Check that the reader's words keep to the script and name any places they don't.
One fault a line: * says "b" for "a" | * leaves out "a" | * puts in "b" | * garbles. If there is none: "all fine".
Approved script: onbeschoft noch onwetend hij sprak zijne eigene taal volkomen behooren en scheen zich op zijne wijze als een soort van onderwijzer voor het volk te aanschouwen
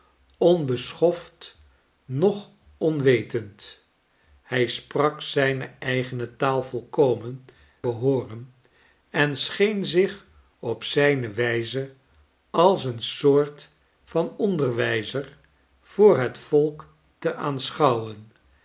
all fine